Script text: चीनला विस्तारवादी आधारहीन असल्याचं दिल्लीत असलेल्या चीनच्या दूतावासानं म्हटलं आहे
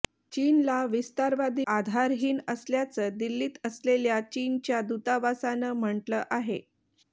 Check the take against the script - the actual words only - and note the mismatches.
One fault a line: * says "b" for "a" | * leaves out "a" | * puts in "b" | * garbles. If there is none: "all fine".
all fine